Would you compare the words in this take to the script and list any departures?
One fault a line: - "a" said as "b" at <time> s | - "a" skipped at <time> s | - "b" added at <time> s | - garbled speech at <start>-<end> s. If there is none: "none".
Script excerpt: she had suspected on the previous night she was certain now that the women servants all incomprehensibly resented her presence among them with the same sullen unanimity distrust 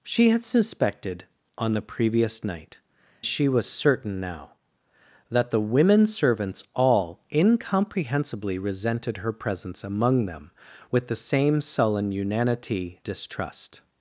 none